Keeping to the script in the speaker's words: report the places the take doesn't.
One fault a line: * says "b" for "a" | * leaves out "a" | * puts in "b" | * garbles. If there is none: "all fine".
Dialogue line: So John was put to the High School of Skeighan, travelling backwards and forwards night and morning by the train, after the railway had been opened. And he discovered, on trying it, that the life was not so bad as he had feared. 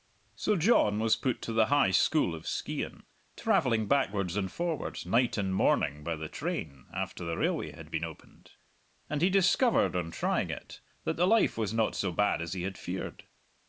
all fine